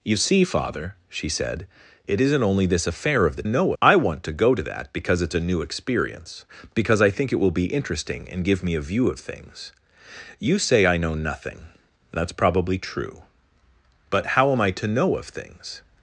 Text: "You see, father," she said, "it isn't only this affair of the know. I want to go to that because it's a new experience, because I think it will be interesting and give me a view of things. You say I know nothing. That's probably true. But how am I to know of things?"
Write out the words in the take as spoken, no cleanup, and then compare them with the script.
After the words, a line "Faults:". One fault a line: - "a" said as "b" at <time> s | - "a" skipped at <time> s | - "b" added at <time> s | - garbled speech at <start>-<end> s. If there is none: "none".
"You see, father," she said, "it isn't only this affair of the know. I want to go to that because it's a new experience, because I think it will be interesting and give me a view of things. You say I know nothing. That's probably true. But how am I to know of things?"
Faults:
none